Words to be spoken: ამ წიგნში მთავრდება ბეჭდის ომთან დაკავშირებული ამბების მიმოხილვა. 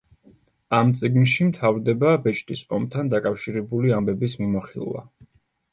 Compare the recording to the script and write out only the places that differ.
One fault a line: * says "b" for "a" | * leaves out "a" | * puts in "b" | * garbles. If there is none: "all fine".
all fine